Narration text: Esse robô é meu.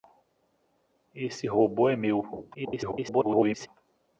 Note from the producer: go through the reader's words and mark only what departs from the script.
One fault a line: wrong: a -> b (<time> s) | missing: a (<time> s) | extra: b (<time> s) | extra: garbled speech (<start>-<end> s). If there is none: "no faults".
extra: garbled speech (2.5-3.7 s)